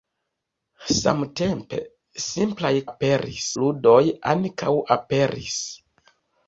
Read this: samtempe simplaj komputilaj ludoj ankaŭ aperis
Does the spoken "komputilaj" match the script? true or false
false